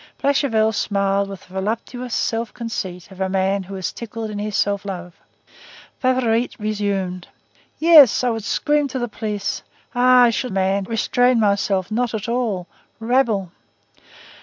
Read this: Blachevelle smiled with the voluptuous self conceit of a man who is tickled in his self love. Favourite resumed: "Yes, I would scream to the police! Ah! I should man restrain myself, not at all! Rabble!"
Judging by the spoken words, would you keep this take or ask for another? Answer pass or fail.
pass